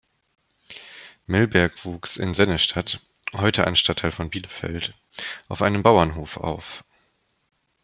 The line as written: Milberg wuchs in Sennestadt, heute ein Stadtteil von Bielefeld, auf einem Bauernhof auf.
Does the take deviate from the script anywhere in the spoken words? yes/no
no